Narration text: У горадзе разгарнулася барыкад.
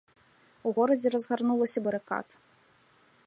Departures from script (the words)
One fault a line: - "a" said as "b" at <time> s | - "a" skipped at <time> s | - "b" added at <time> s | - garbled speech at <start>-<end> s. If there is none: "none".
none